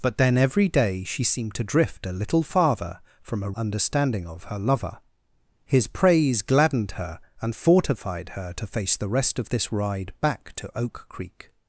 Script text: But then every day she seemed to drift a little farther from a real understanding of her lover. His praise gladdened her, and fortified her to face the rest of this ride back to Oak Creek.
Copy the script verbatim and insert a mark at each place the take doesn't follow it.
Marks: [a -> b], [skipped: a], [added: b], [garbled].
But then every day she seemed to drift a little farther from a [skipped: real] understanding of her lover. His praise gladdened her, and fortified her to face the rest of this ride back to Oak Creek.